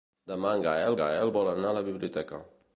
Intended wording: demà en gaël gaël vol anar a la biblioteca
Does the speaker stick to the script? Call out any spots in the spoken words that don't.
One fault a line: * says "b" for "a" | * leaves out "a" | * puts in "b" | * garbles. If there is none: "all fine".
all fine